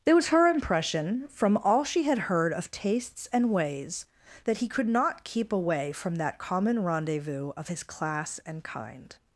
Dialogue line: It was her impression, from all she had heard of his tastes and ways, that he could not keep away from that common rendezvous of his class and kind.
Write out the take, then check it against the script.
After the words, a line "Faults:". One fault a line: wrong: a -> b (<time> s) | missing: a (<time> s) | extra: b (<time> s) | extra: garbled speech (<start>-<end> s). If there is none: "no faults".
It was her impression, from all she had heard of tastes and ways, that he could not keep away from that common rendezvous of his class and kind.
Faults:
missing: his (2.7 s)